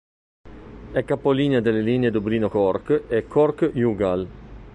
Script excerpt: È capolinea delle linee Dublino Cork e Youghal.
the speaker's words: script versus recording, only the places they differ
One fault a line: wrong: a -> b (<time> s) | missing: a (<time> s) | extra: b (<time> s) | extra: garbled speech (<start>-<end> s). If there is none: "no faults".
extra: Cork (3.3 s)